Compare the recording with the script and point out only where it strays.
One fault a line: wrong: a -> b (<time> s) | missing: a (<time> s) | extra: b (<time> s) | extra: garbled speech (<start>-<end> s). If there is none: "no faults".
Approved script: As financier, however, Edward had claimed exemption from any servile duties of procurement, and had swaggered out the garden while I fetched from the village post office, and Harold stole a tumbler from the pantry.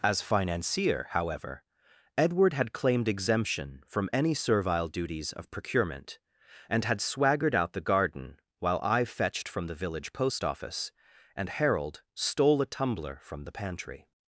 no faults